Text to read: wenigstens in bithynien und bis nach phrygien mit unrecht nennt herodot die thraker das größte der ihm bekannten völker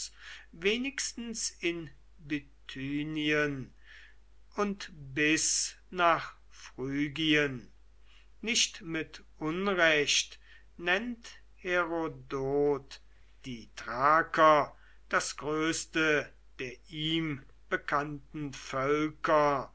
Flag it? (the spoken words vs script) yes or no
yes